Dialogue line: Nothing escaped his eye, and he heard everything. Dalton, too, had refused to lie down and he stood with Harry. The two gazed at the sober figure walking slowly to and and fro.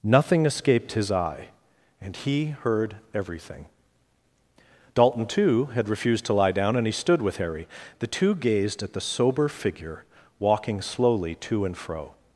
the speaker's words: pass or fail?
fail